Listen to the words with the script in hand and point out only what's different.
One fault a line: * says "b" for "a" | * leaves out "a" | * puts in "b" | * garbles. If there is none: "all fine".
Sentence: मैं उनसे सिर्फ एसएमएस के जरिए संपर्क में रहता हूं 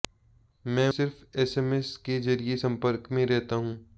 * leaves out "उनसे"